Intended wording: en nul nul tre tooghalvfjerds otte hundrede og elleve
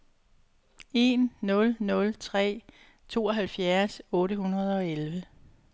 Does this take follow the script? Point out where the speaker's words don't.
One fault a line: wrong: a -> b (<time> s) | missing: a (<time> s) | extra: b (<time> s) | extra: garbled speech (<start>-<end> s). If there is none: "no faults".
no faults